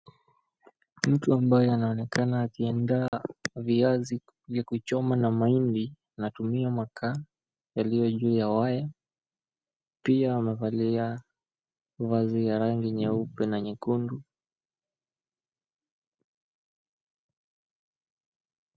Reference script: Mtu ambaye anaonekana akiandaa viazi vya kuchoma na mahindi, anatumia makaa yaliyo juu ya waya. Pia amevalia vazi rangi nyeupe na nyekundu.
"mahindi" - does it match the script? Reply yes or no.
yes